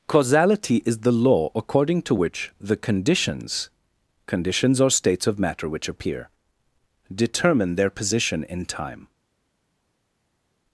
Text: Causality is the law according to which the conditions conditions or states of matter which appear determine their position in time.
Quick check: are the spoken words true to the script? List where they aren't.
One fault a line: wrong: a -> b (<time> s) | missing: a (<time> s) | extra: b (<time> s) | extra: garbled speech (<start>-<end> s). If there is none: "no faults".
no faults